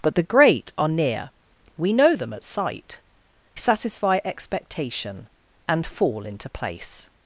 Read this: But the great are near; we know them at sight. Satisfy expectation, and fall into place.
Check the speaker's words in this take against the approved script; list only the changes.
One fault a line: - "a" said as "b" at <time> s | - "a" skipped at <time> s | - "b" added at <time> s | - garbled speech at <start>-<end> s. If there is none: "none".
none